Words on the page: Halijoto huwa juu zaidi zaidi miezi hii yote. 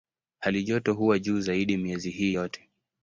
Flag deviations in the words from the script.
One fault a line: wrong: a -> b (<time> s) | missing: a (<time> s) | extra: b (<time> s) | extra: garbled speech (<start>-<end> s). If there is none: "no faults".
missing: zaidi (1.8 s)